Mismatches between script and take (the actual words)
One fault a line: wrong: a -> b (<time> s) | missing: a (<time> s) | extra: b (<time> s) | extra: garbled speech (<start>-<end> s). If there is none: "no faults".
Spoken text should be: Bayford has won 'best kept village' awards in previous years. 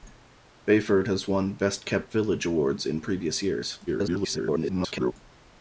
extra: garbled speech (3.9-5.1 s)